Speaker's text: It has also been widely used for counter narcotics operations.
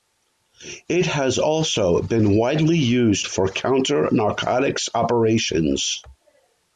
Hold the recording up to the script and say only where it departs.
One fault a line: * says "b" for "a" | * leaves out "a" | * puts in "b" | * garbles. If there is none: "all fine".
all fine